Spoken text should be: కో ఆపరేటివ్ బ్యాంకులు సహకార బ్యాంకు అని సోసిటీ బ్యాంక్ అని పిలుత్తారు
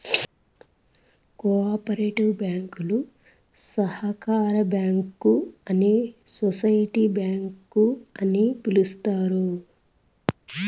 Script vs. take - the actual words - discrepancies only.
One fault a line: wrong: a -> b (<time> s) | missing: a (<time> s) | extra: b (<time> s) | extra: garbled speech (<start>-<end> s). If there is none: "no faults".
no faults